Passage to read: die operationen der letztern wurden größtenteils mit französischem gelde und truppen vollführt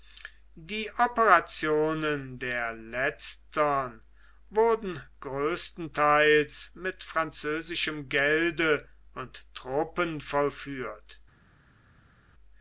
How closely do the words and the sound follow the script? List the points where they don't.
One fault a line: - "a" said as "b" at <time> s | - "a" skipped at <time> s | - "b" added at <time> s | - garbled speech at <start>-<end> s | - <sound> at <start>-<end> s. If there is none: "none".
none